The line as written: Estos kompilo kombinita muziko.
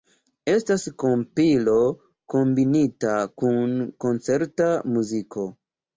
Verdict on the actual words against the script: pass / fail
fail